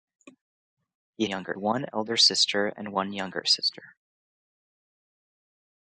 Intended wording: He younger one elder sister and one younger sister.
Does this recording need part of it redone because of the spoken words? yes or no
no